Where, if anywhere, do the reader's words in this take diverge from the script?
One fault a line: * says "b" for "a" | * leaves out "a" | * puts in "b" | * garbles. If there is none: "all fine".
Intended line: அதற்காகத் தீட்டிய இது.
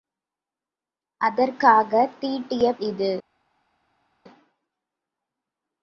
all fine